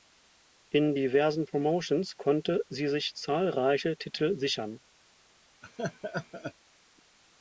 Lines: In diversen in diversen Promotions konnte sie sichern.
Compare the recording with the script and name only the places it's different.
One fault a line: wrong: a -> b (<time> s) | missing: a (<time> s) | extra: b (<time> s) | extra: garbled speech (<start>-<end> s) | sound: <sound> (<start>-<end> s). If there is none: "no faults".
missing: in diversen (1.5 s)
extra: sich zahlreiche Titel (2.9 s)
sound: laugh (5.6-6.5 s)